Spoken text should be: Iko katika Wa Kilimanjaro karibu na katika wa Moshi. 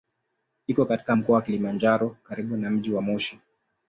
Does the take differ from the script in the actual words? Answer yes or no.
yes